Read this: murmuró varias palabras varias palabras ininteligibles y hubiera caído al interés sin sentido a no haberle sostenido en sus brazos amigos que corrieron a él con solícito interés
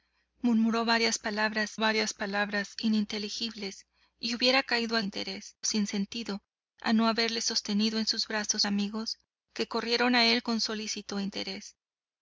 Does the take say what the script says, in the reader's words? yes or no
yes